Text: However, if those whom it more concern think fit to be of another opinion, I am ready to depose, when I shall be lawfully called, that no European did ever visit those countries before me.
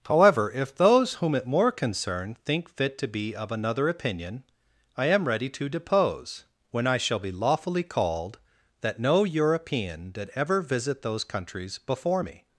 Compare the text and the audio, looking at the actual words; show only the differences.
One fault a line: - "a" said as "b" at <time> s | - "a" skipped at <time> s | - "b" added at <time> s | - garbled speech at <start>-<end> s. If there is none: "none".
none